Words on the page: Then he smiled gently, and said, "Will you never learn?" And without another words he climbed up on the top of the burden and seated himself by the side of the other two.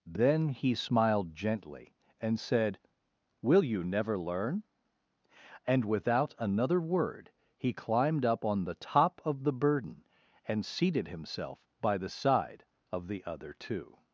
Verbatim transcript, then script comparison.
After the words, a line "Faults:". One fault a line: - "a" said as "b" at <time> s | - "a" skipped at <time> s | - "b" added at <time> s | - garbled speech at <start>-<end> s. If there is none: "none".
Then he smiled gently, and said, "Will you never learn?" And without another word he climbed up on the top of the burden and seated himself by the side of the other two.
Faults:
- "words" said as "word" at 6.8 s